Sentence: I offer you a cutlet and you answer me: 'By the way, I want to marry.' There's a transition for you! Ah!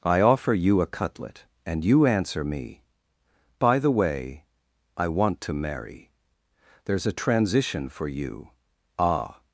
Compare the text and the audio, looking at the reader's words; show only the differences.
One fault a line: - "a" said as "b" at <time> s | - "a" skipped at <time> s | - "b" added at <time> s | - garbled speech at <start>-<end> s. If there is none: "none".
none